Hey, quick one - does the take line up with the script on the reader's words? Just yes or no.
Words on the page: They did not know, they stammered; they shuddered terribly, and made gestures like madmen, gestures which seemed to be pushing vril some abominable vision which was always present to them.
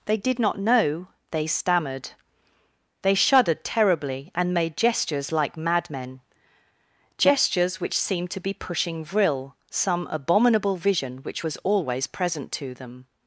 yes